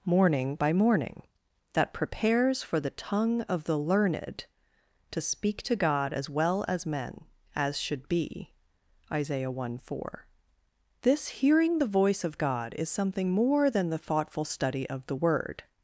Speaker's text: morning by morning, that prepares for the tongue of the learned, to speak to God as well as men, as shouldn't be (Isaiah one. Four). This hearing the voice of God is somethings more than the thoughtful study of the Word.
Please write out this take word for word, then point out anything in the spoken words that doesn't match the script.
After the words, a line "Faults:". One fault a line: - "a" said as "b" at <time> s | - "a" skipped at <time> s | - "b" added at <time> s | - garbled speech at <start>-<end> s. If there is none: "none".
morning by morning, that prepares for the tongue of the learned, to speak to God as well as men, as should be (Isaiah one. Four). This hearing the voice of God is something more than the thoughtful study of the Word.
Faults:
- "shouldn't" said as "should" at 7.8 s
- "somethings" said as "something" at 12.9 s